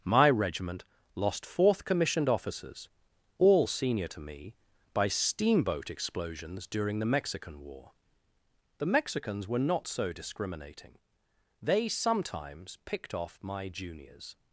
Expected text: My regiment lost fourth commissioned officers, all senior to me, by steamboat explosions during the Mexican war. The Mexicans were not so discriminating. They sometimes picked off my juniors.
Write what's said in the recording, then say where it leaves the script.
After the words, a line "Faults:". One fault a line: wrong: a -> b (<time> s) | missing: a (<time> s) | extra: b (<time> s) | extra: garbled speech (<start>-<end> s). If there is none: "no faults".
My regiment lost fourth commissioned officers, all senior to me, by steamboat explosions during the Mexican war. The Mexicans were not so discriminating. They sometimes picked off my juniors.
Faults:
no faults